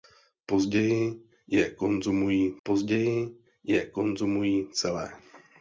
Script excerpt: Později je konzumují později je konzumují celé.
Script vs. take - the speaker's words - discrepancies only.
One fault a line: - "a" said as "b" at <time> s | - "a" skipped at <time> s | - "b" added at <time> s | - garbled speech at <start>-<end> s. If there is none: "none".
none